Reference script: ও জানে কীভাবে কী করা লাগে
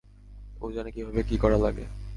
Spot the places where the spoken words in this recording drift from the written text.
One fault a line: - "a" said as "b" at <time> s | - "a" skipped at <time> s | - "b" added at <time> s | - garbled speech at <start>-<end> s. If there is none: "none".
none